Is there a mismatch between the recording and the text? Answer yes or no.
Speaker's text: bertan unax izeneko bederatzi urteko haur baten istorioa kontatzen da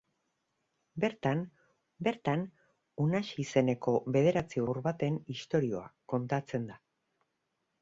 yes